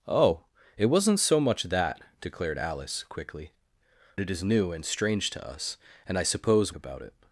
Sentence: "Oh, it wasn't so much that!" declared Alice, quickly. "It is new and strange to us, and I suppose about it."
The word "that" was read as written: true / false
true